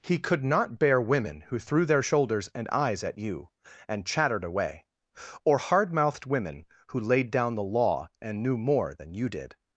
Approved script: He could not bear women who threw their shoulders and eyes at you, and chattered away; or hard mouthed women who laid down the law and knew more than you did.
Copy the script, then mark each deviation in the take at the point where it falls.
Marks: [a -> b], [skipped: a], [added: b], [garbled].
He could not bear women who threw their shoulders and eyes at you, and chattered away; or hard mouthed women who laid down the law and knew more than you did.